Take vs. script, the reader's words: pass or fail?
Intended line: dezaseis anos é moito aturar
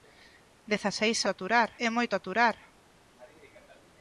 fail